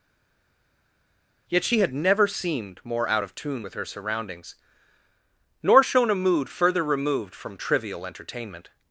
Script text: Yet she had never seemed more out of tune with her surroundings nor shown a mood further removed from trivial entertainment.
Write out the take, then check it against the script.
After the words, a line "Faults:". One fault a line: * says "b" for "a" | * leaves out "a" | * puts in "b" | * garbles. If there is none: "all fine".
Yet she had never seemed more out of tune with her surroundings nor shown a mood further removed from trivial entertainment.
Faults:
all fine